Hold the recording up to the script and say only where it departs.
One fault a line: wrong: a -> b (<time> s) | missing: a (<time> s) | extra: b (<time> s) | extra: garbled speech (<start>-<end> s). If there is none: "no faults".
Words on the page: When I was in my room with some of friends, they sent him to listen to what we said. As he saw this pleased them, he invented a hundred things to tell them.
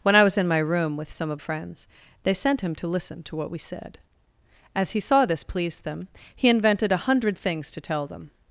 no faults